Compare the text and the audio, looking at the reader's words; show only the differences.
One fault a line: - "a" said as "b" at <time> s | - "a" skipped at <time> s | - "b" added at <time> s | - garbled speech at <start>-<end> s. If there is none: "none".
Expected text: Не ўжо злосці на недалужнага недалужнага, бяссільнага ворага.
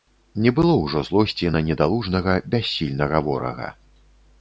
- "было" added at 0.6 s
- "недалужнага" skipped at 2.4 s